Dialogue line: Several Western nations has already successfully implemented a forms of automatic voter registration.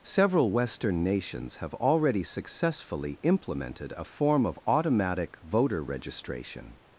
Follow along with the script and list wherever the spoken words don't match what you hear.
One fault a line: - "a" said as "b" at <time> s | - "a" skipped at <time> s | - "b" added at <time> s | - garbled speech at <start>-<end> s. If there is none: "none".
- "has" said as "have" at 1.6 s
- "forms" said as "form" at 4.0 s